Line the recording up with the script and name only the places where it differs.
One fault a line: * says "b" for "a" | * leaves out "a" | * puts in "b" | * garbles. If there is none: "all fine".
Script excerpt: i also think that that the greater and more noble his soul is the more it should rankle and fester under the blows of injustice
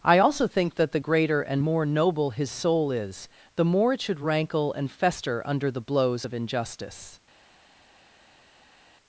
* leaves out "that"